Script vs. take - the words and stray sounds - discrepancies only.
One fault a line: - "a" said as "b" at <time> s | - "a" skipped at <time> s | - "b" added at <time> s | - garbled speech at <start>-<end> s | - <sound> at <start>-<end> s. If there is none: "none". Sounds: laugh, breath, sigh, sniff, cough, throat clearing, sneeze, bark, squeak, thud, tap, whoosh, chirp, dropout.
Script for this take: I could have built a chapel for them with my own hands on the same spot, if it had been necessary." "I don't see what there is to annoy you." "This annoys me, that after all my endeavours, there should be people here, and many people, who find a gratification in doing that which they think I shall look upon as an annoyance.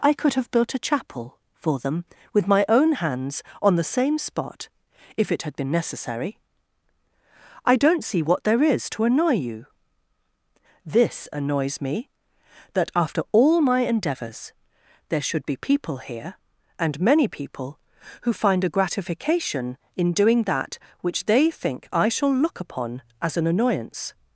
none